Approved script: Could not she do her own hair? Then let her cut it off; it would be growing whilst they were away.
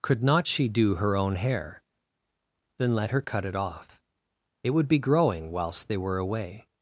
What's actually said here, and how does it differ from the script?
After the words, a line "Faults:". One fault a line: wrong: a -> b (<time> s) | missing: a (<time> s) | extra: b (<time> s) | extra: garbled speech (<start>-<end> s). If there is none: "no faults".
Could not she do her own hair? Then let her cut it off; it would be growing whilst they were away.
Faults:
no faults